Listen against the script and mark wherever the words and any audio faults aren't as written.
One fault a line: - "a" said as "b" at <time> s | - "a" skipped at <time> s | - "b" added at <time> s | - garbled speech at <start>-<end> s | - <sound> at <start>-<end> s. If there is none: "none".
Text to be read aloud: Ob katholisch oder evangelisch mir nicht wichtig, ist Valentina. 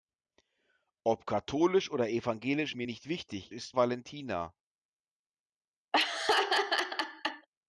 - laugh at 5.9-7.5 s